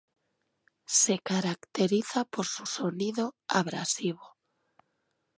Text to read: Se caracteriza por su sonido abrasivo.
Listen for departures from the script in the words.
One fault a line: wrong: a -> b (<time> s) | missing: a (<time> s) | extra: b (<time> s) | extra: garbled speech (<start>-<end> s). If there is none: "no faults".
no faults